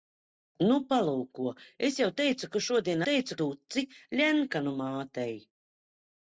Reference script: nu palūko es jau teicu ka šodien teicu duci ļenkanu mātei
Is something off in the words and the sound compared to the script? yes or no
no